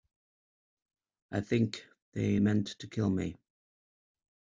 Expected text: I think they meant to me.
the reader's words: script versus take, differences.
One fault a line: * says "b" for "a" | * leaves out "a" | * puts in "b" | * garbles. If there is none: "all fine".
* puts in "kill"